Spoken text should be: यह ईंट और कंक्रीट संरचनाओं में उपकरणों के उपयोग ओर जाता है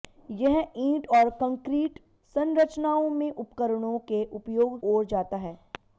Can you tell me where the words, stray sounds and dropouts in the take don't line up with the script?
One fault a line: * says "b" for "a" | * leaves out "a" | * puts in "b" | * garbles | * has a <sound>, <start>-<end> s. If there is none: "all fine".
all fine